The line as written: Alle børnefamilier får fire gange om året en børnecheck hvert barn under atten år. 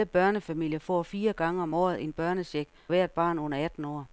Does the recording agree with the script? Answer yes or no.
yes